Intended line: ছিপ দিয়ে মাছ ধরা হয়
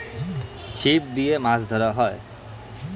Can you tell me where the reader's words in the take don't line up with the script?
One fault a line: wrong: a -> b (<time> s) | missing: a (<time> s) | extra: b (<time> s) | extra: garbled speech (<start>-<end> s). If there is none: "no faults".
no faults